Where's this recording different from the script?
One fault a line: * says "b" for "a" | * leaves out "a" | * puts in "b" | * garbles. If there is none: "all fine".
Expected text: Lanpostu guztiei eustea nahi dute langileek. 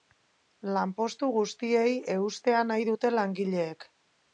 all fine